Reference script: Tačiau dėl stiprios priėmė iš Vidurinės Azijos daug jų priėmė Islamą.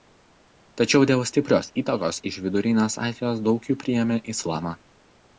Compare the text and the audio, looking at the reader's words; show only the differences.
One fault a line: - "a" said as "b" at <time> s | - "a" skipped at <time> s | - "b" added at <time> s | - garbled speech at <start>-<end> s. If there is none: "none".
- "priėmė" said as "įtakos" at 1.8 s